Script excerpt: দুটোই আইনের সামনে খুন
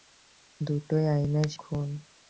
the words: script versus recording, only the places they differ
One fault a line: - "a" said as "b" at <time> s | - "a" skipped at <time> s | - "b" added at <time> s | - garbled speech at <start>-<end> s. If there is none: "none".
- "সামনে" skipped at 1.5 s